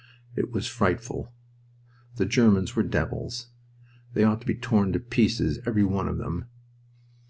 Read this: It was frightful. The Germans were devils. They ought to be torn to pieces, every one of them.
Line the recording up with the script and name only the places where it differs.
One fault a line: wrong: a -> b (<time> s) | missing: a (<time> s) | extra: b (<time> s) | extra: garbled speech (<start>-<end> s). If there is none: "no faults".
no faults